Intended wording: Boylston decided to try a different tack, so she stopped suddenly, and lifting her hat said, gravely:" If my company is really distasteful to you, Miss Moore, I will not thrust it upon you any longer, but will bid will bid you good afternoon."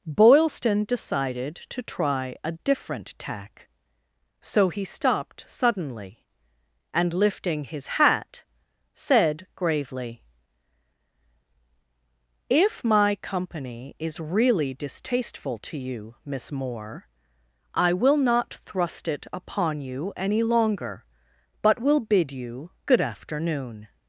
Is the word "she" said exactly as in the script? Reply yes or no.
no